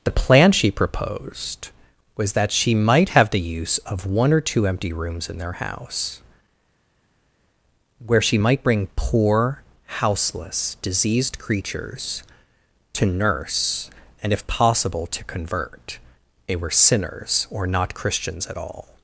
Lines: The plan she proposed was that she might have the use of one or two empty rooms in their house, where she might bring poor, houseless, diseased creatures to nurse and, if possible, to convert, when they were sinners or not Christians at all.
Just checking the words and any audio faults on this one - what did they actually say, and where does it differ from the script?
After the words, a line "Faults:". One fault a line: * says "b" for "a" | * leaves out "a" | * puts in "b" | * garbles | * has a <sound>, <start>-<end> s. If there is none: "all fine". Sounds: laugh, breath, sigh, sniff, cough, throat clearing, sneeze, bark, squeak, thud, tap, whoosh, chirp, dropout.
The plan she proposed was that she might have the use of one or two empty rooms in their house, where she might bring poor, houseless, diseased creatures to nurse and, if possible, to convert, they were sinners or not Christians at all.
Faults:
* leaves out "when"